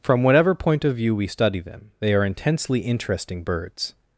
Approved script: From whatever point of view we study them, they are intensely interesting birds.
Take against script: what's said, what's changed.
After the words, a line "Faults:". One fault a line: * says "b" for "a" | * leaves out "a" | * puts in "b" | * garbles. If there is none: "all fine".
From whatever point of view we study them, they are intensely interesting birds.
Faults:
all fine